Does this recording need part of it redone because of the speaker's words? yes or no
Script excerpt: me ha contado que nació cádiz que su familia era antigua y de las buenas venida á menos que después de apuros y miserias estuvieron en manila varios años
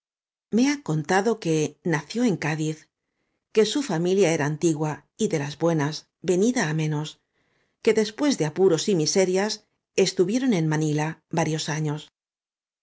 yes